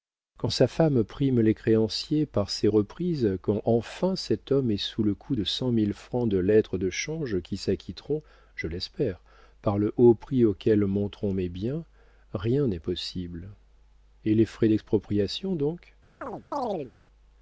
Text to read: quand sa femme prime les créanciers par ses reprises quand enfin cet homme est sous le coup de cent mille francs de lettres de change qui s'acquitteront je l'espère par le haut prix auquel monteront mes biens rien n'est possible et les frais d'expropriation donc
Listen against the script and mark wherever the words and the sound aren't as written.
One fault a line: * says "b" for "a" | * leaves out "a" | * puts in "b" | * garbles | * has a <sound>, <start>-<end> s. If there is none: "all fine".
* has a chirp, 16.2-16.9 s